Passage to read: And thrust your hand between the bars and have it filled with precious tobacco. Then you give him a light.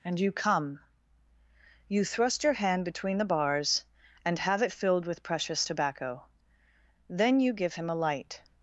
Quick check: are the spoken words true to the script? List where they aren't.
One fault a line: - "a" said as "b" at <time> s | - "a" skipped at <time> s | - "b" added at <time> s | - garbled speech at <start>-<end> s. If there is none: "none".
- "you come You" added at 0.2 s